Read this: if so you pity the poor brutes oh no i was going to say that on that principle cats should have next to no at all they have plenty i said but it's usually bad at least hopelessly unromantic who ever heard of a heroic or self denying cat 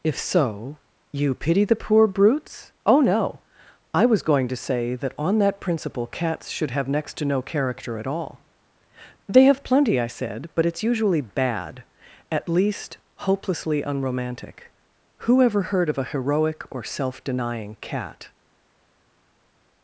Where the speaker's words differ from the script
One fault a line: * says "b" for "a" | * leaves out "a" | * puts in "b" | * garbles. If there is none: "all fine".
* puts in "character"